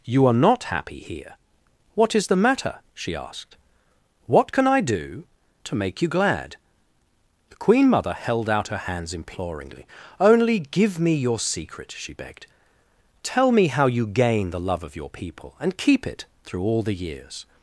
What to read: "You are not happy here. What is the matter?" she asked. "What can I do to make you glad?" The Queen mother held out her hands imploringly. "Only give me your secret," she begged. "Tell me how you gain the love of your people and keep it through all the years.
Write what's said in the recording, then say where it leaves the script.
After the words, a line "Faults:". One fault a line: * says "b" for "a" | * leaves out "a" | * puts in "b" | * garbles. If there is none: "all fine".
"You are not happy here. What is the matter?" she asked. "What can I do to make you glad?" The Queen mother held out her hands imploringly. "Only give me your secret," she begged. "Tell me how you gain the love of your people and keep it through all the years.
Faults:
all fine